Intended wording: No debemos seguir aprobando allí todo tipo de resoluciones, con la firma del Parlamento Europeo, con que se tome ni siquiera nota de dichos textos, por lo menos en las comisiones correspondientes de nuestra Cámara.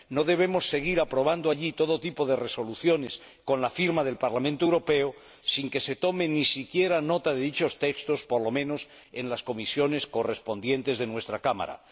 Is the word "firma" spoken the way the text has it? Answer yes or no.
yes